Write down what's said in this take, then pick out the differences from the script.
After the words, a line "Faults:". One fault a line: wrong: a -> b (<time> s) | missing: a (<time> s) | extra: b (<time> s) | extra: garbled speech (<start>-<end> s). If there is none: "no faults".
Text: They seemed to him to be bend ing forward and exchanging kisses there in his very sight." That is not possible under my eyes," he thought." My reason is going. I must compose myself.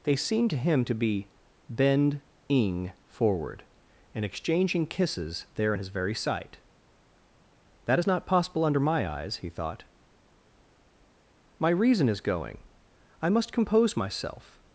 They seemed to him to be bend ing forward and exchanging kisses there in his very sight." That is not possible under my eyes," he thought." My reason is going. I must compose myself.
Faults:
no faults